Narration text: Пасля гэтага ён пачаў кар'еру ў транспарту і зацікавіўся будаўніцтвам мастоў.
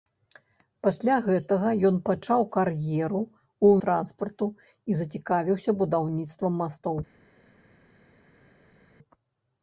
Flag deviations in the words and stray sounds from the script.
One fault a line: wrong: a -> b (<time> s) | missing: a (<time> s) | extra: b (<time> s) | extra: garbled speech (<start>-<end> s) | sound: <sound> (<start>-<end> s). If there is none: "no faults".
no faults